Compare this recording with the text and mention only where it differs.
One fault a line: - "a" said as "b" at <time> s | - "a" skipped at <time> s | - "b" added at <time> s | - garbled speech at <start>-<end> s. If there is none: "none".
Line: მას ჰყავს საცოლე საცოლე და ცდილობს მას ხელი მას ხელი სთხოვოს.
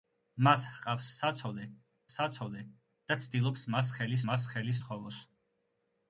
none